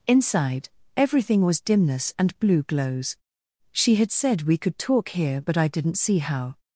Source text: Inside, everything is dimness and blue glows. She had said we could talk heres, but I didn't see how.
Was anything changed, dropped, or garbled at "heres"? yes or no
yes